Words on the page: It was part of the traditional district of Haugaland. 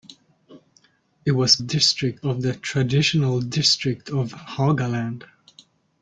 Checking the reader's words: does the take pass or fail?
fail